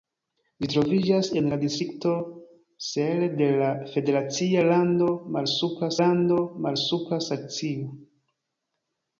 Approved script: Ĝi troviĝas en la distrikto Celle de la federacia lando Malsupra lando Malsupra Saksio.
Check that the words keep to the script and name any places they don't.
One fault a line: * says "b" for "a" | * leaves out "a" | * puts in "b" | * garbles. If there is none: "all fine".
all fine